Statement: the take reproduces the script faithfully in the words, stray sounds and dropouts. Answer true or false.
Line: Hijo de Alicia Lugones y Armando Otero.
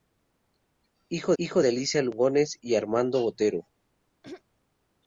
false